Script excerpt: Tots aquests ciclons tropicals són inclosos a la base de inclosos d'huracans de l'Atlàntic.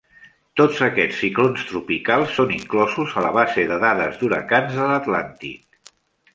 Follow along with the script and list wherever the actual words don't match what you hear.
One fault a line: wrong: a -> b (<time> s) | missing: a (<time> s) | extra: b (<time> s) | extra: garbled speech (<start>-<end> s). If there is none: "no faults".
wrong: inclosos -> dades (3.9 s)